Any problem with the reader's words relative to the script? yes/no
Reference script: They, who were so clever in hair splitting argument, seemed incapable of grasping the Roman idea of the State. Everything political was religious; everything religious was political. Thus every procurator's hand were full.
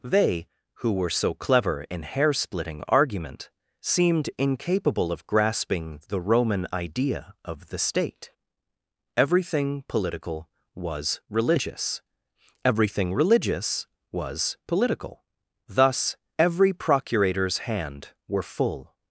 no